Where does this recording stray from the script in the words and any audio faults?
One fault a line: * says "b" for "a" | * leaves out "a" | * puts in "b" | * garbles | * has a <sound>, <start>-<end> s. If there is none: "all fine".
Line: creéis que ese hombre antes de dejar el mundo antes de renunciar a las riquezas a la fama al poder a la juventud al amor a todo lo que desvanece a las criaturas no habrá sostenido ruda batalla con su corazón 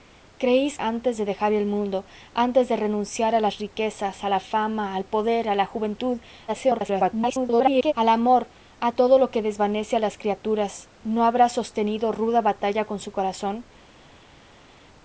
* leaves out "que ese hombre"
* garbles